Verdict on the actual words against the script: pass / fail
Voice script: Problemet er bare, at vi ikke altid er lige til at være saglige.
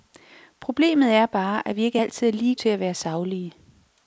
pass